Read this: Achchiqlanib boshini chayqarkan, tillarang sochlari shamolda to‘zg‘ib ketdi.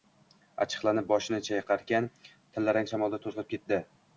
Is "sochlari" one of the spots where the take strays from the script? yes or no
yes